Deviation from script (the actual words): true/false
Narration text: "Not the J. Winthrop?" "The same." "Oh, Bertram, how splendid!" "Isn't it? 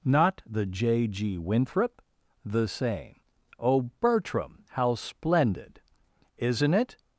true